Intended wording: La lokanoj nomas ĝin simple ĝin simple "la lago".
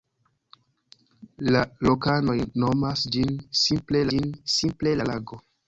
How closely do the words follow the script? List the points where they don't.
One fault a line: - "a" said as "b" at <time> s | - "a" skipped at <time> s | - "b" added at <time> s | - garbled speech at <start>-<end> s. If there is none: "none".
none